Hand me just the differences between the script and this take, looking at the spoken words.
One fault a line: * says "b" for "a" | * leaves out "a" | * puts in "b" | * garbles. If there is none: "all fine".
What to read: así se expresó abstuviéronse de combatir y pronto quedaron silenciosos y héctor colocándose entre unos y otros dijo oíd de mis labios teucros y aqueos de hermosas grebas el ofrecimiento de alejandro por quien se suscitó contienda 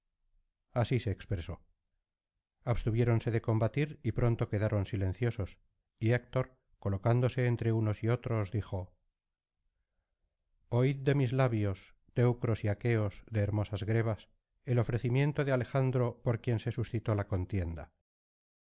* puts in "la"